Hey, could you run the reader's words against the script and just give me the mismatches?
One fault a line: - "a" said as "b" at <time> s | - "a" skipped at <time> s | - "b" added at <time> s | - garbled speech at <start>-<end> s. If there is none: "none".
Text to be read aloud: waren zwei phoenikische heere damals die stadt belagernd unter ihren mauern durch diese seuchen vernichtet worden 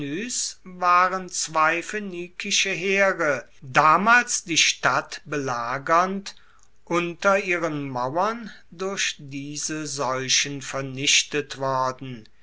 none